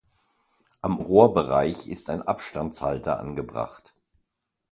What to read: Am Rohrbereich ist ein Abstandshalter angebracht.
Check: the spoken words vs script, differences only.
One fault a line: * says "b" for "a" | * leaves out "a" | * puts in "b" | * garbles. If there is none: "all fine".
all fine